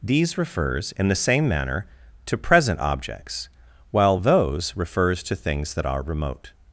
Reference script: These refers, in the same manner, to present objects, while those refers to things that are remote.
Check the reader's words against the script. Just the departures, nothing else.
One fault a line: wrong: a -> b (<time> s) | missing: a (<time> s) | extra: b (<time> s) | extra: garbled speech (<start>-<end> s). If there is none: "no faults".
no faults